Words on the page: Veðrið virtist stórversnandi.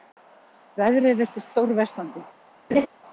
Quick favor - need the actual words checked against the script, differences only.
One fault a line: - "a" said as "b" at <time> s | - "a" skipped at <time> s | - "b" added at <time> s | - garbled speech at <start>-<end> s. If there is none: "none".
none